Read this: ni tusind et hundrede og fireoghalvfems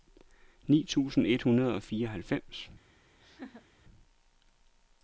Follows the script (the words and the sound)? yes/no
no